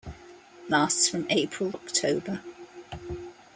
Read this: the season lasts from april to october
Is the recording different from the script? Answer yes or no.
yes